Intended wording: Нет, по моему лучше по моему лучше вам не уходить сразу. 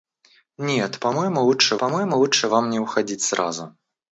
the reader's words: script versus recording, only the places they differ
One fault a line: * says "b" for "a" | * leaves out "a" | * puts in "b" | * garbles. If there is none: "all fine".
all fine